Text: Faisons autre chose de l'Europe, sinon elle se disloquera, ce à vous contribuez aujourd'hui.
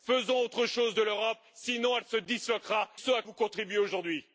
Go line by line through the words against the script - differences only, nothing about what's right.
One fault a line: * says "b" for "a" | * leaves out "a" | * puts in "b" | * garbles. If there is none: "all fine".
all fine